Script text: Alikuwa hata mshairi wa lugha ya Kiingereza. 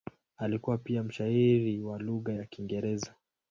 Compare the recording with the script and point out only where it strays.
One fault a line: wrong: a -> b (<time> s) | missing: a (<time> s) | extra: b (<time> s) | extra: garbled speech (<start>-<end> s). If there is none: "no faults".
wrong: hata -> pia (0.8 s)